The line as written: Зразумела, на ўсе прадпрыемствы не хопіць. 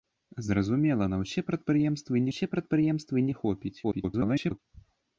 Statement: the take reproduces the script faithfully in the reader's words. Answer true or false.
false